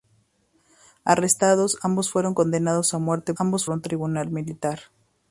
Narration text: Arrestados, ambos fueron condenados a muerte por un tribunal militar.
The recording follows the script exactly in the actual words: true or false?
false